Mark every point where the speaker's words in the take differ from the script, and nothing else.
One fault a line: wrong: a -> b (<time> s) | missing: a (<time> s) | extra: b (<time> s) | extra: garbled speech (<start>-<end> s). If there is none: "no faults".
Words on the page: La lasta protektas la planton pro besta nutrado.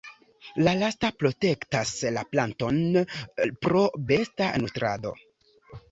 no faults